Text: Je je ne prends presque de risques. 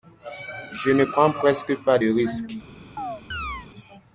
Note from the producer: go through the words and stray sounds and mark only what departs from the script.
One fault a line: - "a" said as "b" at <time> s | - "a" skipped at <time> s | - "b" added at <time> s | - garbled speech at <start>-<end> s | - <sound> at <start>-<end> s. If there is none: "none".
- "je" skipped at 0.9 s
- "pas" added at 1.8 s
- chirp at 3.0-3.7 s